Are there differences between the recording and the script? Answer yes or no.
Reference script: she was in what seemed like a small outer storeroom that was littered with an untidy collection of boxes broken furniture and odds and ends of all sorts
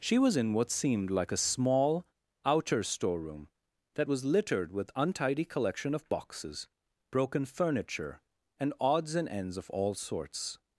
yes